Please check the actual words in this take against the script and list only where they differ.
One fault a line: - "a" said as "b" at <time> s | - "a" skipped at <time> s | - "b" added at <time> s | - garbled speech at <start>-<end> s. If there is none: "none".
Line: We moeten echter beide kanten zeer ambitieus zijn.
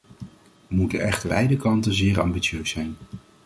none